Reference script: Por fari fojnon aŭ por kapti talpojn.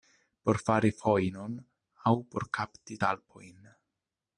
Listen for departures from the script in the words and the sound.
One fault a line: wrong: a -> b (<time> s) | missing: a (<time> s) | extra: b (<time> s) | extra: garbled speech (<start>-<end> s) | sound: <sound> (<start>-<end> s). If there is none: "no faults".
no faults